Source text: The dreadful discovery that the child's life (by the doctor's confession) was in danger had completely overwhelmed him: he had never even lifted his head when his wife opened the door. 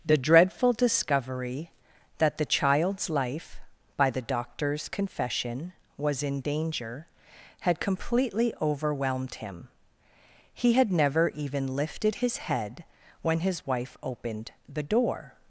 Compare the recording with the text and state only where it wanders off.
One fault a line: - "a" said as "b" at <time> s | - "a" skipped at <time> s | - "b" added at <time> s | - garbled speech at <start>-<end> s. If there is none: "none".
none